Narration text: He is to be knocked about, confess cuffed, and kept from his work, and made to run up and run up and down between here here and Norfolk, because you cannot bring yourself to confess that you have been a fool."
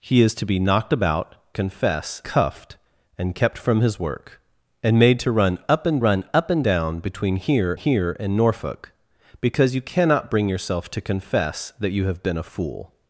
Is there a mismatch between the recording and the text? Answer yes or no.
no